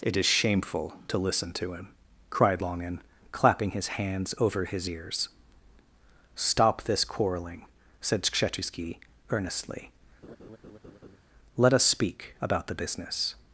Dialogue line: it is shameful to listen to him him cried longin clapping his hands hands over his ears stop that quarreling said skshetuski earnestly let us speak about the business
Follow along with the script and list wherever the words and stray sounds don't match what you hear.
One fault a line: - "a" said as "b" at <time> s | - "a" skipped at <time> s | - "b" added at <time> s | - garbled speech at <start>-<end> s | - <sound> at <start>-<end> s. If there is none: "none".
- "him" skipped at 1.9 s
- "hands" skipped at 4.3 s
- "that" said as "this" at 6.8 s
- laugh at 10.2-11.2 s